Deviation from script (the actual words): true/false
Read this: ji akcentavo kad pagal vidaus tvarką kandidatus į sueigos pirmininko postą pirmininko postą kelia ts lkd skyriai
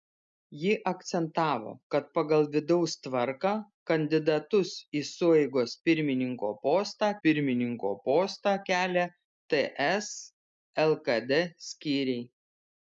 false